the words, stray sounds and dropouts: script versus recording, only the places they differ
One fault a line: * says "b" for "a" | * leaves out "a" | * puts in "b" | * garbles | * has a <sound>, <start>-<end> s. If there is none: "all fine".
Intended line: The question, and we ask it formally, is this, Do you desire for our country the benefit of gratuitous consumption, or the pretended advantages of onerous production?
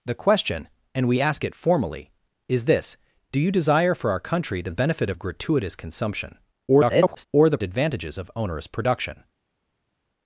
* garbles
* leaves out "pretended"